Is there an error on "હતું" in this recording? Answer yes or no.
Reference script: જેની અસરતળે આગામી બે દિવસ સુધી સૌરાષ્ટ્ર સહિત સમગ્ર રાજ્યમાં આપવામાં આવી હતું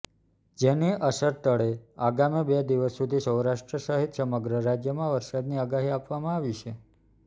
yes